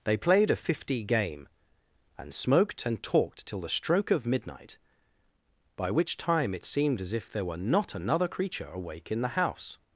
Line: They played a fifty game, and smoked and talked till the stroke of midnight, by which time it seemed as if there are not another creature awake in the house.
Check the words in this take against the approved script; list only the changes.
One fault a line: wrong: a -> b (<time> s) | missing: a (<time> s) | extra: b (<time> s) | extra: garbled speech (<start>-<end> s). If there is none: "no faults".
wrong: are -> were (7.5 s)